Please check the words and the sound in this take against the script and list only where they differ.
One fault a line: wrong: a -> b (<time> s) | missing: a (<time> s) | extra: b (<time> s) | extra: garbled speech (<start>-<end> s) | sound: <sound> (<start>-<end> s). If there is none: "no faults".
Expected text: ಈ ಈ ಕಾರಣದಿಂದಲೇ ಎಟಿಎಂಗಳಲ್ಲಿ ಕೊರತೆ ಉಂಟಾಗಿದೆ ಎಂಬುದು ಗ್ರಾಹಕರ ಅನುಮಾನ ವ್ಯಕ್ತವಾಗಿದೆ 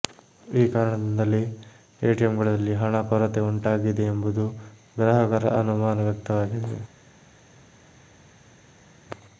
missing: ಈ (0.7 s)
extra: ಹಣ (2.7 s)